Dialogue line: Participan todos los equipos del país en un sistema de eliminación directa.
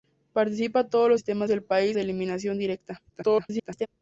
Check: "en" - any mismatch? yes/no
yes